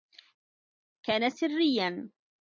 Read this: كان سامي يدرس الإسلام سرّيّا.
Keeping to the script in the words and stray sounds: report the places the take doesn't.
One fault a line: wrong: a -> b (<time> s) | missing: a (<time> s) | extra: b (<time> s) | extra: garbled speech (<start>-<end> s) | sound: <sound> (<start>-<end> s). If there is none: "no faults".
missing: سامي يدرس الإسلام (1.3 s)